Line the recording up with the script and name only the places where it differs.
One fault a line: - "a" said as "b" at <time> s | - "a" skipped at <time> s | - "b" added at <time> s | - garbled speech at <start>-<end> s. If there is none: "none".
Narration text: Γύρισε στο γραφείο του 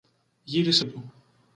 - "στο γραφείο" skipped at 0.8 s